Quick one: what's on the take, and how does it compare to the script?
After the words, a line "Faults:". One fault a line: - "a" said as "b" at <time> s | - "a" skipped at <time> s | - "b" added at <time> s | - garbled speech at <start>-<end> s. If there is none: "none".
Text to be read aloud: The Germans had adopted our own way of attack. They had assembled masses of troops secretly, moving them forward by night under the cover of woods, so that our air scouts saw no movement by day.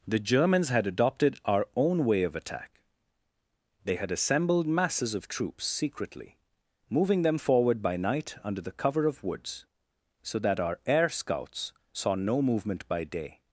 The Germans had adopted our own way of attack. They had assembled masses of troops secretly, moving them forward by night under the cover of woods, so that our air scouts saw no movement by day.
Faults:
none